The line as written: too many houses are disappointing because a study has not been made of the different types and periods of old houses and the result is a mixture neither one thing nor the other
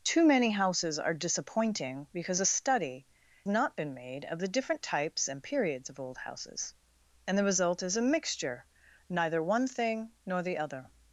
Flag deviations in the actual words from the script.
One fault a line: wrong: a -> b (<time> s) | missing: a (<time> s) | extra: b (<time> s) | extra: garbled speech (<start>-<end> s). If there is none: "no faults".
missing: has (3.1 s)